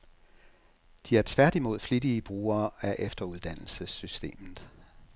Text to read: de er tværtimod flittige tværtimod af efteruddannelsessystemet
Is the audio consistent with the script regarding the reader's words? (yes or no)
no